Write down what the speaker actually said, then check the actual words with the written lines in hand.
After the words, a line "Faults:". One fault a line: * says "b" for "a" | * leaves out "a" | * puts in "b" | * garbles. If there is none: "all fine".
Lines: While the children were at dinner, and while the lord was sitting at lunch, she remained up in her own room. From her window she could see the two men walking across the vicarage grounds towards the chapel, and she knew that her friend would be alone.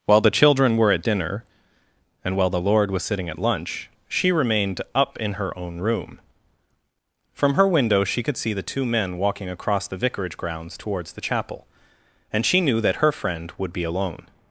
While the children were at dinner, and while the lord was sitting at lunch, she remained up in her own room. From her window she could see the two men walking across the vicarage grounds towards the chapel, and she knew that her friend would be alone.
Faults:
all fine